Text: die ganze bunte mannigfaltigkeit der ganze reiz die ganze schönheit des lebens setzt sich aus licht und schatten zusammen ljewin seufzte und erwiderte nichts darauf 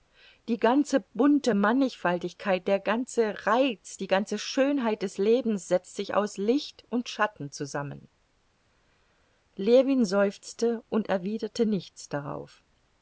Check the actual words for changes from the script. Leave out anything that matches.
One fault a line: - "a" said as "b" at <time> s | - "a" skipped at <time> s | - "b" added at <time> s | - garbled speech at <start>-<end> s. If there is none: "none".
none